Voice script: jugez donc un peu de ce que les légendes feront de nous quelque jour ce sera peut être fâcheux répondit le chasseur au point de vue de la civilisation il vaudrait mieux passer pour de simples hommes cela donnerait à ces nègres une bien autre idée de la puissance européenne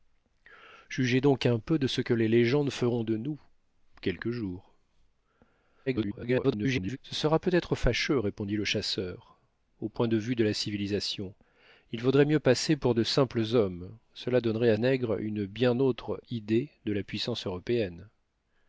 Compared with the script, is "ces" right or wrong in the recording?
wrong